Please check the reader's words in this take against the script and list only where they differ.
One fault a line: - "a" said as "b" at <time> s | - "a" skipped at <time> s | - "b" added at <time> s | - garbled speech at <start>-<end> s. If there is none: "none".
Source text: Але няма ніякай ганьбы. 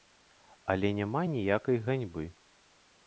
none